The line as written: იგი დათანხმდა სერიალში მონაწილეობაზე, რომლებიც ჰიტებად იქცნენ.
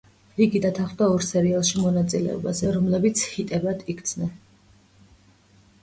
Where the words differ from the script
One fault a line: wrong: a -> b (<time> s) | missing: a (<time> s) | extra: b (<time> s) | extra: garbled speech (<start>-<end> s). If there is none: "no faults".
extra: ორ (1.1 s)